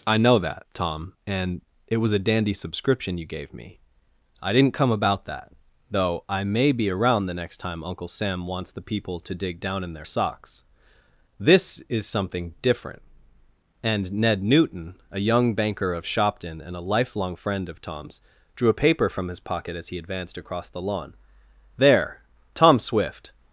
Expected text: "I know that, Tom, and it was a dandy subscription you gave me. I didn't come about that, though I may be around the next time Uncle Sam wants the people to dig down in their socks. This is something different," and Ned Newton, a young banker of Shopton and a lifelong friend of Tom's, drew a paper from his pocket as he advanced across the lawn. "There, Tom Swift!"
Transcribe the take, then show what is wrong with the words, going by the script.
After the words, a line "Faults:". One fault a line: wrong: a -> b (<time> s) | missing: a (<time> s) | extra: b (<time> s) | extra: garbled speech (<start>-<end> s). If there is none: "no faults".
"I know that, Tom, and it was a dandy subscription you gave me. I didn't come about that, though I may be around the next time Uncle Sam wants the people to dig down in their socks. This is something different," and Ned Newton, a young banker of Shopton and a lifelong friend of Tom's, drew a paper from his pocket as he advanced across the lawn. "There, Tom Swift!"
Faults:
no faults